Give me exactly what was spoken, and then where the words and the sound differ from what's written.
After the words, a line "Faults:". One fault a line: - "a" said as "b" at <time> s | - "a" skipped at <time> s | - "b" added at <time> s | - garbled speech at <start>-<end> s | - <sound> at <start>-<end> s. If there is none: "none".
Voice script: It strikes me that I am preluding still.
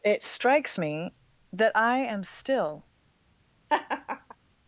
It strikes me that I am still.
Faults:
- "preluding" skipped at 2.3 s
- laugh at 3.7-4.4 s